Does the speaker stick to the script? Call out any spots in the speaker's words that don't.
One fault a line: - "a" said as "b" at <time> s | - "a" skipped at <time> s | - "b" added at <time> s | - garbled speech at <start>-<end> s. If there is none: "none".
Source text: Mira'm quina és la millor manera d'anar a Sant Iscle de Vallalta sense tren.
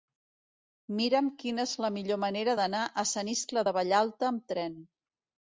- "sense" said as "amb" at 4.3 s